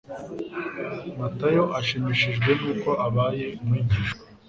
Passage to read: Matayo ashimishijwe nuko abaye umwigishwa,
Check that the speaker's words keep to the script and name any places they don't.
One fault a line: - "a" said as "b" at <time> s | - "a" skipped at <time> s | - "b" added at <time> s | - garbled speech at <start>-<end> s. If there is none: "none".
none